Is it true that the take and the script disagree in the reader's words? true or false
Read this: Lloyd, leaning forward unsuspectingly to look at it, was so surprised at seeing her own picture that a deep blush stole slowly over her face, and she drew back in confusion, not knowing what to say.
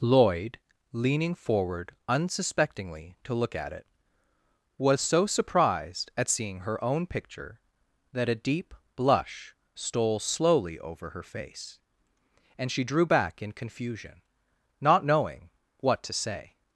false